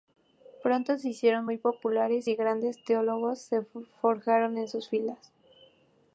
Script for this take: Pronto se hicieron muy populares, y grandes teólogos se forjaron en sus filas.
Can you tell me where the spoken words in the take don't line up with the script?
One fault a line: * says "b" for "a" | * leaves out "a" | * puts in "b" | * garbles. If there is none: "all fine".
all fine